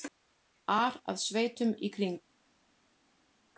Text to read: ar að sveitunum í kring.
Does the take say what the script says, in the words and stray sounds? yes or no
yes